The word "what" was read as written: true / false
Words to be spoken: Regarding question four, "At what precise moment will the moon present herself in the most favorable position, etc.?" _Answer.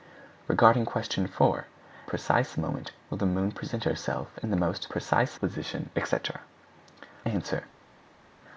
false